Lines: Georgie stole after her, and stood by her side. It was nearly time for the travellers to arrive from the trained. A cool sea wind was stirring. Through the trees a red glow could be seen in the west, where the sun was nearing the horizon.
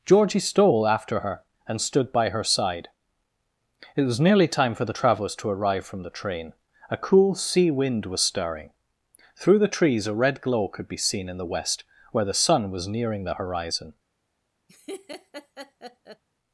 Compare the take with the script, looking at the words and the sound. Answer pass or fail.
fail